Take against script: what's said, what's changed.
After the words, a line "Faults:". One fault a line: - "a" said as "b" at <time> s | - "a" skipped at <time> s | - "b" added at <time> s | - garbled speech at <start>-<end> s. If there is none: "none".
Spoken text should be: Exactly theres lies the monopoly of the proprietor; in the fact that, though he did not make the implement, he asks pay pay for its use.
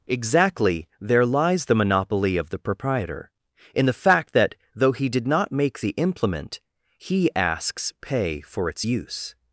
Exactly there lies the monopoly of the proprietor; in the fact that, though he did not make the implement, he asks pay for its use.
Faults:
- "theres" said as "there" at 1.0 s
- "pay" skipped at 8.4 s